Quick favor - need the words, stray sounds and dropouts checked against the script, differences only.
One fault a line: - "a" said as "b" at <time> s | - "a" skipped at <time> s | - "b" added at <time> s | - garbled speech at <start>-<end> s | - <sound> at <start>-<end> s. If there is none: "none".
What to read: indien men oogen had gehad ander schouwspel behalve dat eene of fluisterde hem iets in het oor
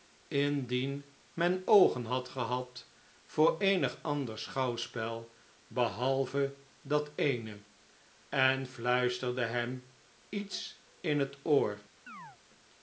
- "voor eenig" added at 3.2 s
- "of" said as "en" at 8.3 s
- chirp at 12.1-12.4 s